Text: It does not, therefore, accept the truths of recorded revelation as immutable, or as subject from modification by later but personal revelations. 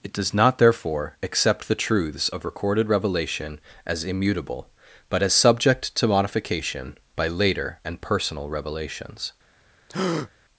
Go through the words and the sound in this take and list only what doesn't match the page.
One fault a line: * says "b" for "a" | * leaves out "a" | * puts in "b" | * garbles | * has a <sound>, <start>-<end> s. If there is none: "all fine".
* says "but" for "or"
* says "to" for "from"
* says "and" for "but"
* has a breath, 9.9-10.3 s